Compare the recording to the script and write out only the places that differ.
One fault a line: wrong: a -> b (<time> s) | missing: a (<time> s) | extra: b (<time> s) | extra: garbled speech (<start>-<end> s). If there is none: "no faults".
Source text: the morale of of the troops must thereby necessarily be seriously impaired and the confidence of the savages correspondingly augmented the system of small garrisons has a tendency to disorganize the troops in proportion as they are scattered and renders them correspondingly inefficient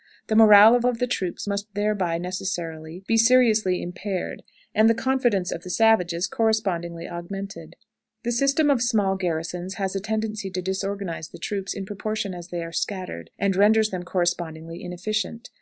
no faults